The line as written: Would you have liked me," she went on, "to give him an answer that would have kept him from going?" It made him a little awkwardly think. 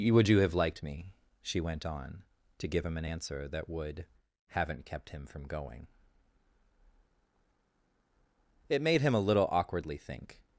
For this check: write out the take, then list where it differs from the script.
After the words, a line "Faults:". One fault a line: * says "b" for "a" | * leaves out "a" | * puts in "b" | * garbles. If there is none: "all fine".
Would you have liked me," she went on, "to give him an answer that would haven't kept him from going?" It made him a little awkwardly think.
Faults:
* says "haven't" for "have"